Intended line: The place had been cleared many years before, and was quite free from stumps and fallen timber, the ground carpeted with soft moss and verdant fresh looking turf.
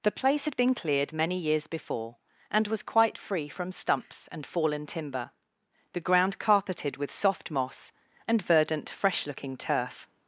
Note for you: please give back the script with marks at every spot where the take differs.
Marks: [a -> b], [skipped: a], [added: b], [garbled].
The place had been cleared many years before, and was quite free from stumps and fallen timber, the ground carpeted with soft moss and verdant fresh looking turf.